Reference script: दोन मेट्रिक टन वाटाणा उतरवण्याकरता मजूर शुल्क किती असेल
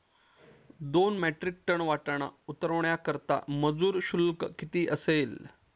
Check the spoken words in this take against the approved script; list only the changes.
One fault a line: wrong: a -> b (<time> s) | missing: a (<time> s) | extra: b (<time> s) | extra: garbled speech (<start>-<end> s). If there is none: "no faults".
no faults